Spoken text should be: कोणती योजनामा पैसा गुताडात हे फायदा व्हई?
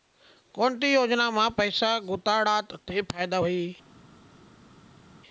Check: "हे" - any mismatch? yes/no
yes